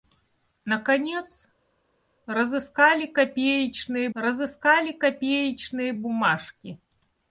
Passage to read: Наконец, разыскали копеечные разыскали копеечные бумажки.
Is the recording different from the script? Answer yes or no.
no